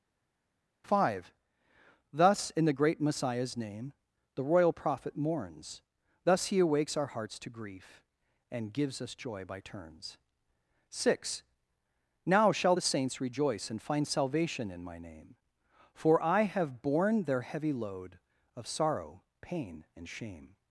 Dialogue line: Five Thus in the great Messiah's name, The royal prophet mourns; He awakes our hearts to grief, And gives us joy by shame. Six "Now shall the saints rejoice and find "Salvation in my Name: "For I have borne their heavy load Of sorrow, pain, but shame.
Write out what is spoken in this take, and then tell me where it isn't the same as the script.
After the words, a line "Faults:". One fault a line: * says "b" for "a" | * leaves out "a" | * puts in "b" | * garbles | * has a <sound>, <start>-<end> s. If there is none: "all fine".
Five Thus in the great Messiah's name, The royal prophet mourns; Thus he awakes our hearts to grief, And gives us joy by turns. Six "Now shall the saints rejoice and find "Salvation in my Name: "For I have borne their heavy load Of sorrow, pain, and shame.
Faults:
* puts in "Thus"
* says "turns" for "shame"
* says "and" for "but"